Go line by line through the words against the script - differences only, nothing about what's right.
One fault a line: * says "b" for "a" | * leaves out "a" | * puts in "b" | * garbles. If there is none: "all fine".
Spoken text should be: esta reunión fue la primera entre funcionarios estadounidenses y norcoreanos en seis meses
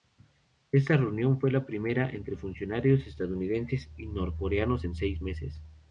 all fine